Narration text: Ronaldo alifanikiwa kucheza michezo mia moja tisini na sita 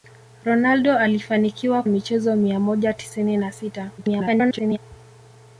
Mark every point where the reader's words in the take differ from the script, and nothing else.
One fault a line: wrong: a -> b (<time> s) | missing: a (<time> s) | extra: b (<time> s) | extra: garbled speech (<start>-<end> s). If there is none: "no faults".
missing: kucheza (1.8 s)
extra: garbled speech (4.0-4.8 s)